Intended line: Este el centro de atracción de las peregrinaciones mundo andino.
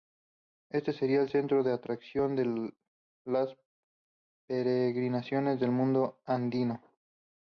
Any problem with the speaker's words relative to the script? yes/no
yes